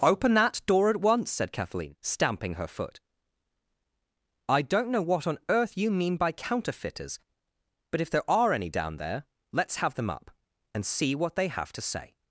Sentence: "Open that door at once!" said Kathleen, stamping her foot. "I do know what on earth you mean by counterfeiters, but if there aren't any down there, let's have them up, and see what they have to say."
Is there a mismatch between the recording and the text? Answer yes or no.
yes